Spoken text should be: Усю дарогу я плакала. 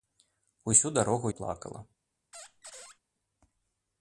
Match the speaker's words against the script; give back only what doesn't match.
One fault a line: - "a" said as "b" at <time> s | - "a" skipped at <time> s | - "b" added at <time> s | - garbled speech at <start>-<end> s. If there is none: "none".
- "я" skipped at 1.3 s